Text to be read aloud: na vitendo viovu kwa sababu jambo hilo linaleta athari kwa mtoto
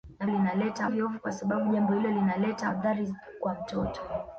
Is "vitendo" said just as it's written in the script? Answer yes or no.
no